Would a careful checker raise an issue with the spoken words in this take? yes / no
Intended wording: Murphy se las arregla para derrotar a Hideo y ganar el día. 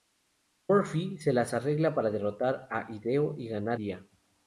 yes